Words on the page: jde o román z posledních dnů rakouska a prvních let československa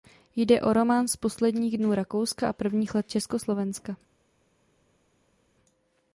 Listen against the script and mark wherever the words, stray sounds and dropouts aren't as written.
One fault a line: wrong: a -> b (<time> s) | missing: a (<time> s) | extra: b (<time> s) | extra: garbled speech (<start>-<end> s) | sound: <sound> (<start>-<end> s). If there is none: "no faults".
no faults